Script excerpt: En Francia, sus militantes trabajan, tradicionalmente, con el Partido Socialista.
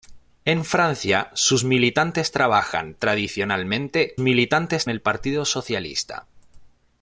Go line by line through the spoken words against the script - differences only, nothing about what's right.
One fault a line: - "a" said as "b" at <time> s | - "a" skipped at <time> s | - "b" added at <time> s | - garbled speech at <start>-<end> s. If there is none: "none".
- "con" said as "militantes" at 4.2 s